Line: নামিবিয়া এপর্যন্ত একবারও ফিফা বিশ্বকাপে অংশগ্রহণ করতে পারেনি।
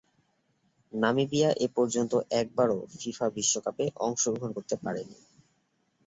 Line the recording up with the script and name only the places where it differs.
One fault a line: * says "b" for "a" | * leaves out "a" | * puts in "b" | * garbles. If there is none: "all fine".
all fine